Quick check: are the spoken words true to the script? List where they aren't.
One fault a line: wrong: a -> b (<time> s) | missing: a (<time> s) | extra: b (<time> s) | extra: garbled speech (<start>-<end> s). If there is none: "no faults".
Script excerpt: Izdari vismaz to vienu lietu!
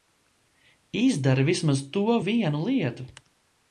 no faults